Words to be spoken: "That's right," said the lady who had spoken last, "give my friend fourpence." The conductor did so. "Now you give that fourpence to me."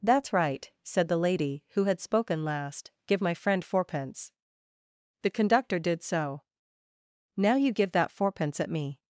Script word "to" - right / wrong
wrong